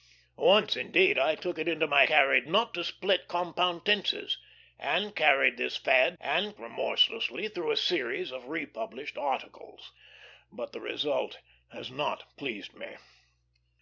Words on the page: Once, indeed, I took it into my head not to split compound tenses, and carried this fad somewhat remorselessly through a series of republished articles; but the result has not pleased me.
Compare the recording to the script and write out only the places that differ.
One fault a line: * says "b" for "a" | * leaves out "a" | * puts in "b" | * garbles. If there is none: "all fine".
* says "carried" for "head"
* says "and" for "somewhat"